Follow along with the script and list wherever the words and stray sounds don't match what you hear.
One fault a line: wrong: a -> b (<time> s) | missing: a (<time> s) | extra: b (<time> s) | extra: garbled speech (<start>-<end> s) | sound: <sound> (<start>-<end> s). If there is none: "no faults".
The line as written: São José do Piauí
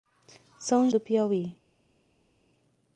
missing: José (0.9 s)